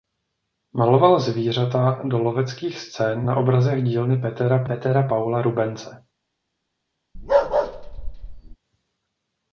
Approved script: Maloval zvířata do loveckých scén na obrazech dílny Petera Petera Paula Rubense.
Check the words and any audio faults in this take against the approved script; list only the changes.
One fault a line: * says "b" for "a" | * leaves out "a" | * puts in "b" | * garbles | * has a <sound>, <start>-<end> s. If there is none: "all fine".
* has a bark, 7.1-8.6 s